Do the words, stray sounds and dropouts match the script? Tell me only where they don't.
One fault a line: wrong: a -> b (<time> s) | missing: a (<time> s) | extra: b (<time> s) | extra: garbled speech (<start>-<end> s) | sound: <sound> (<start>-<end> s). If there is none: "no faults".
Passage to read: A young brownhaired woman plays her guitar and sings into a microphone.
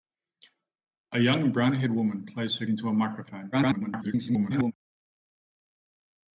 missing: guitar and sings (2.6 s)
extra: garbled speech (3.5-4.7 s)